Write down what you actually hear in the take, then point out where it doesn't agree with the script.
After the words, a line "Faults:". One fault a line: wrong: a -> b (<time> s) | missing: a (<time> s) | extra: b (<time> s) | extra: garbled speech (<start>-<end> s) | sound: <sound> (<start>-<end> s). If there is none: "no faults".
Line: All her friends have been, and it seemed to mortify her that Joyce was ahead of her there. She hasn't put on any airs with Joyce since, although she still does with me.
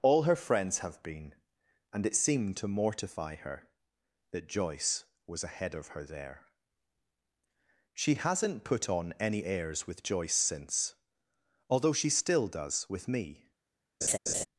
All her friends have been, and it seemed to mortify her that Joyce was ahead of her there. She hasn't put on any airs with Joyce since, although she still does with me.
Faults:
sound: laugh (14.0-14.5 s)